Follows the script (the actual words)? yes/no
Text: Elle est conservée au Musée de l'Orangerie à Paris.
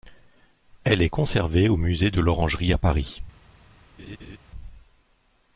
yes